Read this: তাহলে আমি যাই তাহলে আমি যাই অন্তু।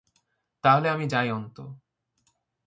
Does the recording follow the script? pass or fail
fail